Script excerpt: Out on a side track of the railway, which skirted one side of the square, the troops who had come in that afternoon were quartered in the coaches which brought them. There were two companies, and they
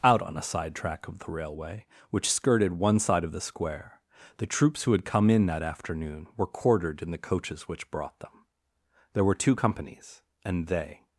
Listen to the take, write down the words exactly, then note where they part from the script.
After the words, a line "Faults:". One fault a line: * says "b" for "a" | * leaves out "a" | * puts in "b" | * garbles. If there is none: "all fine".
Out on a side track of the railway, which skirted one side of the square, the troops who had come in that afternoon were quartered in the coaches which brought them. There were two companies, and they
Faults:
all fine